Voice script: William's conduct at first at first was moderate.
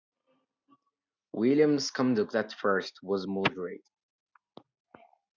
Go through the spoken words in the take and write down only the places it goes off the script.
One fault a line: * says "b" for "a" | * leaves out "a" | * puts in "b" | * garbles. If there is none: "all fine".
* leaves out "at first"